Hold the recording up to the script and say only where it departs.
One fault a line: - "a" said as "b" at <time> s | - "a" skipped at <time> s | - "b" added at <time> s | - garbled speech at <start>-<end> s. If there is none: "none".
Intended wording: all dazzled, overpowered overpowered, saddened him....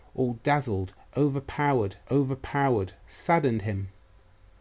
none